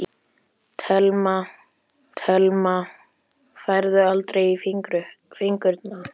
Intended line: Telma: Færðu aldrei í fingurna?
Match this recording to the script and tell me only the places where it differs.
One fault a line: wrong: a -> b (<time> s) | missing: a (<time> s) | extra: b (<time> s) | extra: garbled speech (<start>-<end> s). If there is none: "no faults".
extra: telma (2.2 s)